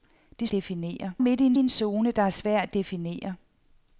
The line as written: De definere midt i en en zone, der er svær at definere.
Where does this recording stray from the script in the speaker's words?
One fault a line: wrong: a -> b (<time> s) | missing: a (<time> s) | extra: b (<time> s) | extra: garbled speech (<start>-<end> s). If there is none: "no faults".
no faults